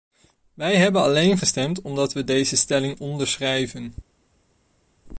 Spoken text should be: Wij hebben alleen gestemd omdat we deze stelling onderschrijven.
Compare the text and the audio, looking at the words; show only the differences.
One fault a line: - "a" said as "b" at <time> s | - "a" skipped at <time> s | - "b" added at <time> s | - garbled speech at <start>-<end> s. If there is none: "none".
none